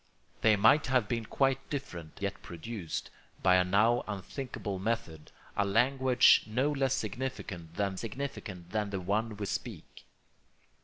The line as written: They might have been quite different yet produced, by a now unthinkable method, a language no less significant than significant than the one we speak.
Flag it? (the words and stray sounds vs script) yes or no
no